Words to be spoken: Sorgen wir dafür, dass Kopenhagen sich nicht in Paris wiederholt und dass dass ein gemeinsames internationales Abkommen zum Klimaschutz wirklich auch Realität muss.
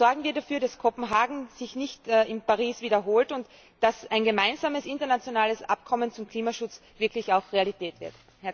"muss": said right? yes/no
no